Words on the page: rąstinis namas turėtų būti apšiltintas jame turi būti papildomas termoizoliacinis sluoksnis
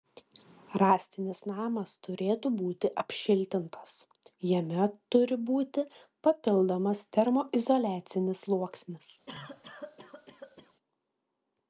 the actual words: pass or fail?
pass